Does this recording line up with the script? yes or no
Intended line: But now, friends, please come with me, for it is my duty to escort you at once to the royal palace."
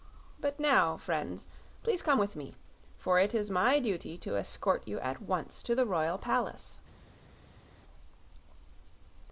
yes